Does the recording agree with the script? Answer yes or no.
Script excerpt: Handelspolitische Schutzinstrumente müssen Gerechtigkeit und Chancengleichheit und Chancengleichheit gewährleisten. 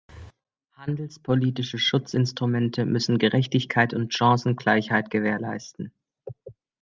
no